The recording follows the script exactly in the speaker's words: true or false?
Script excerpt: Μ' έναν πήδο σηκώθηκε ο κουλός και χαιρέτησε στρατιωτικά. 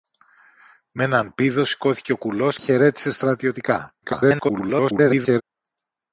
false